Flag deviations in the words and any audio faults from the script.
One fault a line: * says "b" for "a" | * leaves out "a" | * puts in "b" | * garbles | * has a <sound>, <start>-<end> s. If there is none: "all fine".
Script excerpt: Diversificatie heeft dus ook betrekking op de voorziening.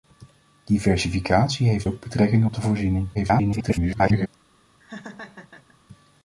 * leaves out "dus"
* garbles
* has a laugh, 4.8-5.8 s